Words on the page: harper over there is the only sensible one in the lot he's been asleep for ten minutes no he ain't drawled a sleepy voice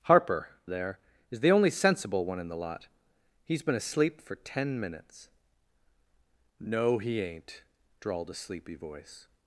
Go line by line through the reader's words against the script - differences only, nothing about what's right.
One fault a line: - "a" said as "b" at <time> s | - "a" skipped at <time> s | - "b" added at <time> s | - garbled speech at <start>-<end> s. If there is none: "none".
- "over" skipped at 0.5 s